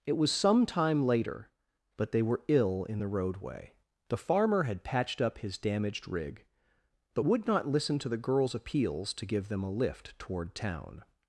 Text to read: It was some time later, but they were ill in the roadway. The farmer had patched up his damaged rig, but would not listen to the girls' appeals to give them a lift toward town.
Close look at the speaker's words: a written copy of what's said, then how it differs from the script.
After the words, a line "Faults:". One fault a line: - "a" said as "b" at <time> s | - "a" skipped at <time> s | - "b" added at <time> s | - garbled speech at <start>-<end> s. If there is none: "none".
It was some time later, but they were ill in the roadway. The farmer had patched up his damaged rig, but would not listen to the girls' appeals to give them a lift toward town.
Faults:
none